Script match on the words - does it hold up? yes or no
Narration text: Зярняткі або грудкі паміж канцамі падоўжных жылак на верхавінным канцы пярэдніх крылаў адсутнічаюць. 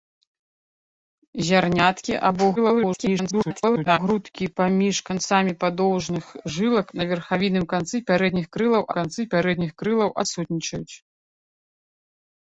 no